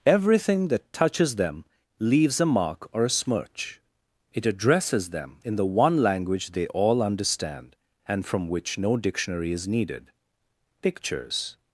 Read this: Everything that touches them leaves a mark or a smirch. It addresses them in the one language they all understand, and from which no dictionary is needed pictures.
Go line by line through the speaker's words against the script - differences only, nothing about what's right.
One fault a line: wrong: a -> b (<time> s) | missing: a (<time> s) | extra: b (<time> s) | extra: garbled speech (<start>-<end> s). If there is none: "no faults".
no faults